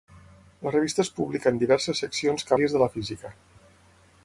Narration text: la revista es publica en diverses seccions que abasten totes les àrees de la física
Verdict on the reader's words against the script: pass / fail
fail